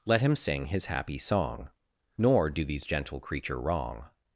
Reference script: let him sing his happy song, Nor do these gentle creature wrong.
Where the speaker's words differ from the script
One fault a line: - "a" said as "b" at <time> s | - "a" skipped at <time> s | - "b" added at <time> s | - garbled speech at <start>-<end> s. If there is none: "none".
none